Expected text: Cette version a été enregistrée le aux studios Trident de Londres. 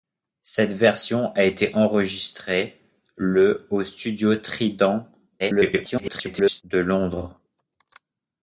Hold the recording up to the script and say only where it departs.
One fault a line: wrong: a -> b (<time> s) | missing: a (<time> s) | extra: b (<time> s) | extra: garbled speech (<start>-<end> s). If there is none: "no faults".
extra: garbled speech (5.4-6.6 s)